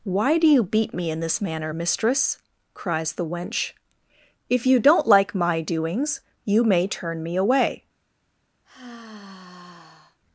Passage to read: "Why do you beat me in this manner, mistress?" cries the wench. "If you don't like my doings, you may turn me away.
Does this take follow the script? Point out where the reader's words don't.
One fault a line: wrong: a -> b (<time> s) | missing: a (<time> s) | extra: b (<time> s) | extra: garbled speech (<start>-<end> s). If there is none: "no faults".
no faults